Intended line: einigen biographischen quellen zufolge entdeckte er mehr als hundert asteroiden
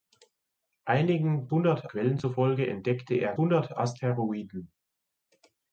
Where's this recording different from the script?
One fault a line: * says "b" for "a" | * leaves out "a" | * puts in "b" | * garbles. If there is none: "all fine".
* says "hundert" for "biographischen"
* leaves out "mehr als"